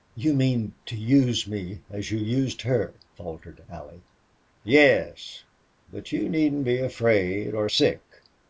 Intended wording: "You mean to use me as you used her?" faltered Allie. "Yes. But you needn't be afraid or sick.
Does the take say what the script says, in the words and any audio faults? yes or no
yes